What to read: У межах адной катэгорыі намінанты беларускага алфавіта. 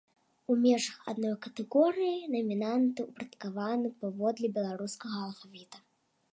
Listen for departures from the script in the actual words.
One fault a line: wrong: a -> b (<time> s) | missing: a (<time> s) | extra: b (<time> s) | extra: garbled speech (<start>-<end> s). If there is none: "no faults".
extra: ўпарадкаваны паводле (3.1 s)